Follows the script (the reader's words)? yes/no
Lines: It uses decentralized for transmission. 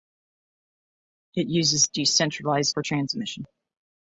yes